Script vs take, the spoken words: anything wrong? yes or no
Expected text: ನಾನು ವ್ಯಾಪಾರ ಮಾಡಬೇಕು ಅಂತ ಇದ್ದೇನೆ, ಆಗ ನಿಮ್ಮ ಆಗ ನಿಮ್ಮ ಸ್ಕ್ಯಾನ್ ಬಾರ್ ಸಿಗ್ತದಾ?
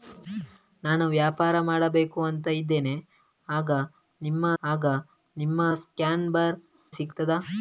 no